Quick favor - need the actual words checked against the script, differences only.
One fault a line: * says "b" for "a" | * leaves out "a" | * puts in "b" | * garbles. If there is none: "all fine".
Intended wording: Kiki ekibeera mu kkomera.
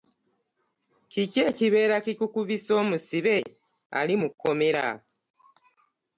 * puts in "kikukubisa omusibe ali"